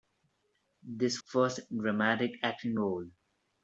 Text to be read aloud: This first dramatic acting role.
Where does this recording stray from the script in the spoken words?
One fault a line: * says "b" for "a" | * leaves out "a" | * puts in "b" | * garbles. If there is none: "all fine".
all fine